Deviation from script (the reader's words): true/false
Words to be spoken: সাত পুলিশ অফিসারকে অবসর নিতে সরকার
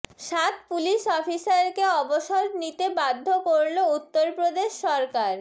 true